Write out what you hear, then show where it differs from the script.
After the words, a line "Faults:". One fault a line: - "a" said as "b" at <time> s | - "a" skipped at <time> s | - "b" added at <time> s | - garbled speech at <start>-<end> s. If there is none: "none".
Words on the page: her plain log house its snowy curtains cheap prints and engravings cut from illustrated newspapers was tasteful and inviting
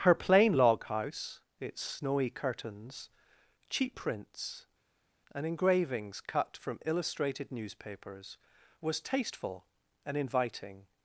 her plain log house its snowy curtains cheap prints and engravings cut from illustrated newspapers was tasteful and inviting
Faults:
none